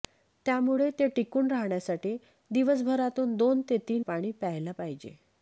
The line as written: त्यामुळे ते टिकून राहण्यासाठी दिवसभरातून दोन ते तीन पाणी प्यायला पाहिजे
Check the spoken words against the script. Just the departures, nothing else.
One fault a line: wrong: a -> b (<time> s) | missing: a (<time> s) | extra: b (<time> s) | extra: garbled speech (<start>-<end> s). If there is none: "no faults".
no faults